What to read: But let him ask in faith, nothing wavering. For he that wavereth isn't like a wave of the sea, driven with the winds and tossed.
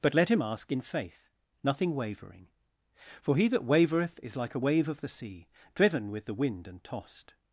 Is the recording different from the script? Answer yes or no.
yes